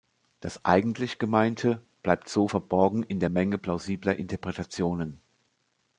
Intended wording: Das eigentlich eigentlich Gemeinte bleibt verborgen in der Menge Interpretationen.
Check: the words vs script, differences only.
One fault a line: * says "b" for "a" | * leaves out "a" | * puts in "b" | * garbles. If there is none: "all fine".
* leaves out "eigentlich"
* puts in "so"
* puts in "plausibler"